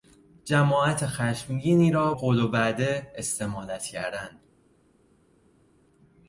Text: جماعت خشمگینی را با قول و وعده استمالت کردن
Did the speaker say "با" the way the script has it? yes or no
no